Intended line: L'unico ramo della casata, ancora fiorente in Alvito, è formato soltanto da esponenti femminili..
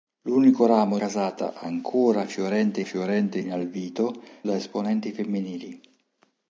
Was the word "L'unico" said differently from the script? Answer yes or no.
no